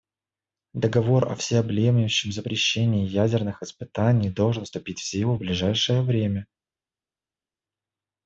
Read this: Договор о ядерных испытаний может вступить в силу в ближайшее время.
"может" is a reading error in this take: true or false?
true